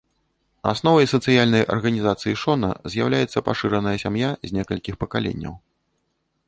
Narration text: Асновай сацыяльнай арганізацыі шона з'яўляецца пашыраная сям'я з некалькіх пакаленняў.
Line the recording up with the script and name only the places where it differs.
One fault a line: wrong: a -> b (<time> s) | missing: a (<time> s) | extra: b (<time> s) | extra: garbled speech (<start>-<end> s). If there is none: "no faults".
no faults